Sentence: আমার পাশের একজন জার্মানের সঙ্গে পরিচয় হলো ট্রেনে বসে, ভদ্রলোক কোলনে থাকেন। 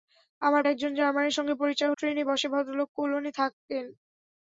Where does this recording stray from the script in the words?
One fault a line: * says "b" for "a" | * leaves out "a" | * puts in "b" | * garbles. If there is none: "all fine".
* leaves out "পাশের"
* leaves out "হলো"